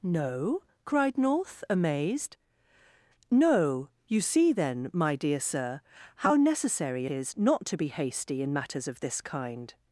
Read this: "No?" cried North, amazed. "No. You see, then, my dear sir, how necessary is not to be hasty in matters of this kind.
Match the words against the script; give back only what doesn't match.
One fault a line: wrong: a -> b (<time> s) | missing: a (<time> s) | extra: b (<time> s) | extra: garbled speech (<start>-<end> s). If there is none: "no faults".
no faults